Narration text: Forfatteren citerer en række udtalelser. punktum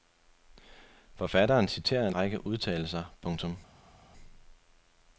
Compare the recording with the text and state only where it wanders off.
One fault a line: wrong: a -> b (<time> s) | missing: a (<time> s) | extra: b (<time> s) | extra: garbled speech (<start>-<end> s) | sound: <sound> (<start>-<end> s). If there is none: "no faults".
no faults